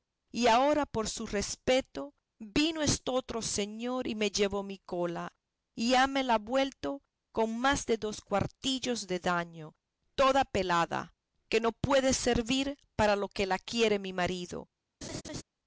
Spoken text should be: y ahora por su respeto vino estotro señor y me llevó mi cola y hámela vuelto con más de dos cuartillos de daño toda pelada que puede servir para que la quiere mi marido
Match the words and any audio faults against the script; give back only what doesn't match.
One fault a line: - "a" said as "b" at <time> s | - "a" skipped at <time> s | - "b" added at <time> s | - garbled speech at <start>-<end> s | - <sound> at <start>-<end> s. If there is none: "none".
- "no" added at 11.6 s
- "lo" added at 13.2 s
- laugh at 15.0-15.4 s